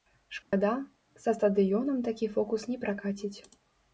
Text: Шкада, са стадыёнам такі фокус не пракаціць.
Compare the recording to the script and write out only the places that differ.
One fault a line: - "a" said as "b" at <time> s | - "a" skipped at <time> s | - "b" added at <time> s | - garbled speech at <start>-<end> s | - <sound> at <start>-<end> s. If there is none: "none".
- dropout at 0.4-0.5 s